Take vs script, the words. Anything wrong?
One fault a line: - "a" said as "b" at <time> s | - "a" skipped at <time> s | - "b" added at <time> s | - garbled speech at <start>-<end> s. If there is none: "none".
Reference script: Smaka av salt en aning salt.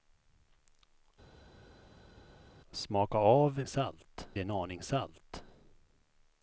none